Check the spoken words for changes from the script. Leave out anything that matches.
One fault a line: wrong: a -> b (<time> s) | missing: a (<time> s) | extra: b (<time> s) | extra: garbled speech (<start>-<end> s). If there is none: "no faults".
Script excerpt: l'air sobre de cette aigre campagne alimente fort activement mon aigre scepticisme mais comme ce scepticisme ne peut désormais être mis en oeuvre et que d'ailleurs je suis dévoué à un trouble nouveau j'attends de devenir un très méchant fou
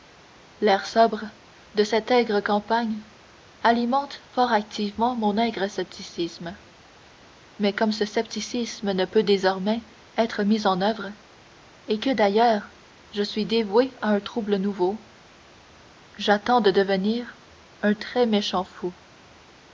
no faults